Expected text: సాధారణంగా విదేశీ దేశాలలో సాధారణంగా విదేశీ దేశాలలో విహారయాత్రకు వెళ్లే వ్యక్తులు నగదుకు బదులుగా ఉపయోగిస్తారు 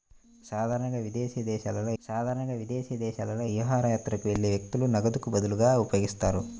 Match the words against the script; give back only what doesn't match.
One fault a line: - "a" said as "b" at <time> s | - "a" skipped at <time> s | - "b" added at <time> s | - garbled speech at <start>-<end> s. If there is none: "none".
none